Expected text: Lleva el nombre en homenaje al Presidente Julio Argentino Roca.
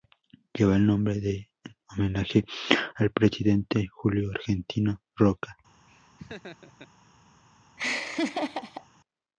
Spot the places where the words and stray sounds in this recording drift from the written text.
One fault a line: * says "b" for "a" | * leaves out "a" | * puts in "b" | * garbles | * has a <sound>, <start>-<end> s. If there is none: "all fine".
* has a laugh, 5.9-6.9 s
* has a laugh, 7.8-8.9 s